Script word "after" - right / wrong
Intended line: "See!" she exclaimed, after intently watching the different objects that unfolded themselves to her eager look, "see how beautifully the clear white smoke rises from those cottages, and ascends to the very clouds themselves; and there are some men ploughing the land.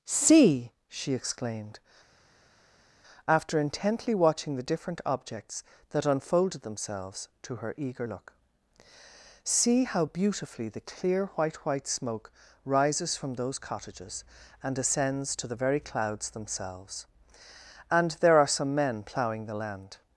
right